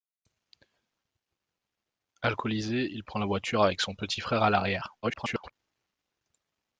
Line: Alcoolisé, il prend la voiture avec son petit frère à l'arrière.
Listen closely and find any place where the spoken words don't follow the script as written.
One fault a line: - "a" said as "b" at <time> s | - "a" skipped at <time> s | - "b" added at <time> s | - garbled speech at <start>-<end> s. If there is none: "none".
- garbled speech at 5.0-5.5 s